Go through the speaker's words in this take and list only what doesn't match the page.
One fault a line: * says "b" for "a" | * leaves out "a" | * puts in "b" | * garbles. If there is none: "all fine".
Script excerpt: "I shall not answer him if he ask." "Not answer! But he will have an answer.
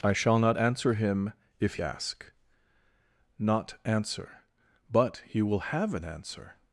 * leaves out "he"